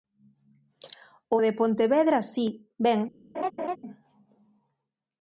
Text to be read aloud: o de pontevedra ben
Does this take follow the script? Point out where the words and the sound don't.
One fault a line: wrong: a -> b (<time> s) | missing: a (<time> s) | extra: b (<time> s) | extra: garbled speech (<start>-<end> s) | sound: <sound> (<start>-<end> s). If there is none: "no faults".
extra: si (2.3 s)
sound: laugh (3.3-3.8 s)